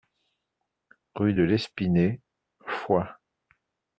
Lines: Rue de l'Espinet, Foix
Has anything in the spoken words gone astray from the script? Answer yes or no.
no